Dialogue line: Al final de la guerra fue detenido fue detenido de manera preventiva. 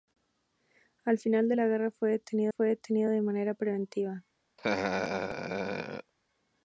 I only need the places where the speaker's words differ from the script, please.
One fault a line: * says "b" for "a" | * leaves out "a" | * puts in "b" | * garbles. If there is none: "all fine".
all fine